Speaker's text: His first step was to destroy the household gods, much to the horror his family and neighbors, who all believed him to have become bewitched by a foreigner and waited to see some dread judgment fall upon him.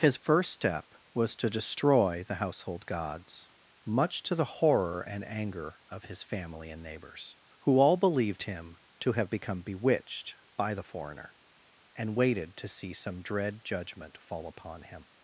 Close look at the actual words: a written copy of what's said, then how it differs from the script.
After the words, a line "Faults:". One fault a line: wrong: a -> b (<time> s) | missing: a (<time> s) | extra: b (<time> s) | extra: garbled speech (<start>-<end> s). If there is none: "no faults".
His first step was to destroy the household gods, much to the horror and anger of his family and neighbors, who all believed him to have become bewitched by the foreigner and waited to see some dread judgment fall upon him.
Faults:
extra: and anger of (5.0 s)
wrong: a -> the (10.7 s)